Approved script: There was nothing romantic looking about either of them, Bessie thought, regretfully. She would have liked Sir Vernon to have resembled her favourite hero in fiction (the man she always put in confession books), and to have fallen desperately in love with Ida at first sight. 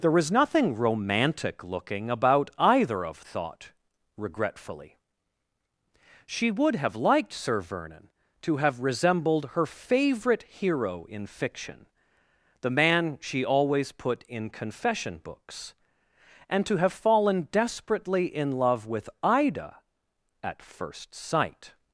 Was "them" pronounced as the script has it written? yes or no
no